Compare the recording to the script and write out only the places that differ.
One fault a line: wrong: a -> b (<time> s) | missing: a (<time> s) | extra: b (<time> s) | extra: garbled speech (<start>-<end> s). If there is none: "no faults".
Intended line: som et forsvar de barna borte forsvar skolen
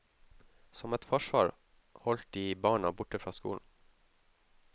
extra: holdt (2.1 s)
wrong: forsvar -> fra (3.2 s)